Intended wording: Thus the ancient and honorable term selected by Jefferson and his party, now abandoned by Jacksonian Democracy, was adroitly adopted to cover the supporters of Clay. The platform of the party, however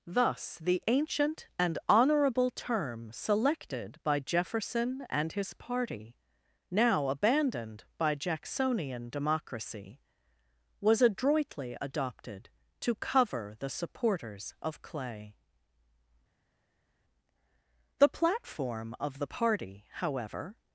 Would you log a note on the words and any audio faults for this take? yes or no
no